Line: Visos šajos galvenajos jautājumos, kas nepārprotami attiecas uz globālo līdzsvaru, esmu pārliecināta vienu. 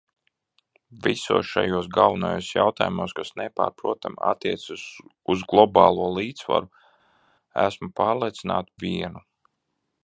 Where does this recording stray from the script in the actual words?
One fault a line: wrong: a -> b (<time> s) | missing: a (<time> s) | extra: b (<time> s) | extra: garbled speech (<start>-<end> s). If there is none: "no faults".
no faults